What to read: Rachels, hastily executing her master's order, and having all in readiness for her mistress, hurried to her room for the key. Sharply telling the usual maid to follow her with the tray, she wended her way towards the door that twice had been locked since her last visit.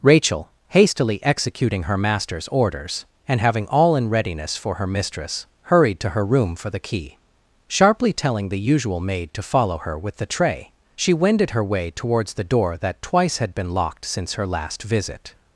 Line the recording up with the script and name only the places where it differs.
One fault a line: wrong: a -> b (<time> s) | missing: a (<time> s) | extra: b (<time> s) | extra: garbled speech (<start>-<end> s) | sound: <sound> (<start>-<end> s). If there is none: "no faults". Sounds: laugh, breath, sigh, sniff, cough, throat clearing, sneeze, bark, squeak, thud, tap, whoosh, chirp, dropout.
wrong: Rachels -> Rachel (0.0 s)
wrong: order -> orders (2.5 s)